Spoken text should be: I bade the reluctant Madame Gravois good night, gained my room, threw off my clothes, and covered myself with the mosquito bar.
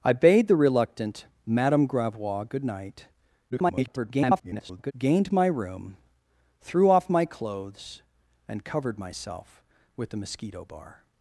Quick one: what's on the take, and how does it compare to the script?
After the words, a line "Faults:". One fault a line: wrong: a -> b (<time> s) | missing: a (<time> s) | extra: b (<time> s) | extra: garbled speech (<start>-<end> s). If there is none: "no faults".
I bade the reluctant Madame Gravois good night, [garbled] gained my room, threw off my clothes, and covered myself with the mosquito bar.
Faults:
extra: garbled speech (3.5-4.9 s)